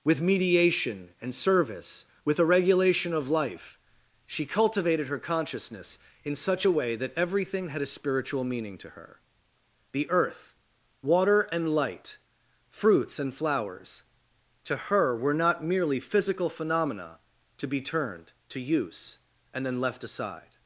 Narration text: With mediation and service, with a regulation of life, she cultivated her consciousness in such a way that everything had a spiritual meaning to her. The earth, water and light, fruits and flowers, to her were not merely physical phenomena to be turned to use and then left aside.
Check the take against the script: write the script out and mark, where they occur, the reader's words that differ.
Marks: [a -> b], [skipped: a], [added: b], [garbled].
With mediation and service, with a regulation of life, she cultivated her consciousness in such a way that everything had a spiritual meaning to her. The earth, water and light, fruits and flowers, to her were not merely physical phenomena to be turned to use and then left aside.